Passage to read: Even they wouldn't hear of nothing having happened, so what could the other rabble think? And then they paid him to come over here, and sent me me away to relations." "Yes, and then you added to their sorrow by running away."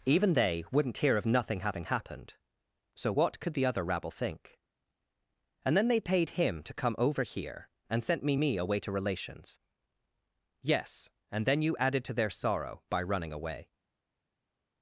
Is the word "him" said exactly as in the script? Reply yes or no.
yes